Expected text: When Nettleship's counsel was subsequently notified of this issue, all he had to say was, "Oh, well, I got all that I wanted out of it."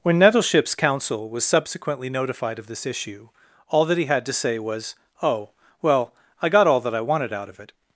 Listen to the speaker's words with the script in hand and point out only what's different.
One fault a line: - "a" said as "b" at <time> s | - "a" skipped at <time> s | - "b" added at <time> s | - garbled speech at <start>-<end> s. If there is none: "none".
- "that" added at 3.9 s